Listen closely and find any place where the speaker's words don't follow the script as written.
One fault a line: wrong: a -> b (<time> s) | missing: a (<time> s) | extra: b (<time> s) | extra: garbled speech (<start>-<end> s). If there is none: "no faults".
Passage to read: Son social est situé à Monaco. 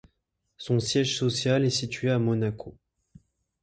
extra: siège (0.8 s)